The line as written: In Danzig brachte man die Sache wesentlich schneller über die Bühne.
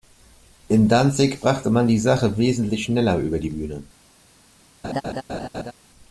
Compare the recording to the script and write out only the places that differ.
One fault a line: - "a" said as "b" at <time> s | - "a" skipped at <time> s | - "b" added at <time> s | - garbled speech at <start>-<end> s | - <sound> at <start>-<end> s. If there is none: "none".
- laugh at 4.8-5.7 s